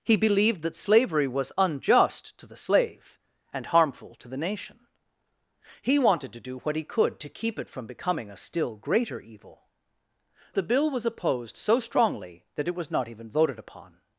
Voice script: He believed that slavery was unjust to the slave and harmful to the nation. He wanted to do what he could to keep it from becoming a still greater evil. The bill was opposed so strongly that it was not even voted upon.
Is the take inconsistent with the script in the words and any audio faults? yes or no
no